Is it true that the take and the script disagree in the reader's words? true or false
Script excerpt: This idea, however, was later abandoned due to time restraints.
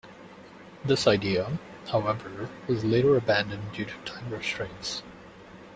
false